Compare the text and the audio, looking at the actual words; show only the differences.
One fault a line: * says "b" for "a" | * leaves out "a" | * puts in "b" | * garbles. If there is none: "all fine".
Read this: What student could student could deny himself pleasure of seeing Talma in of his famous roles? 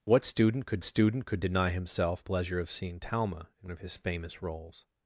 all fine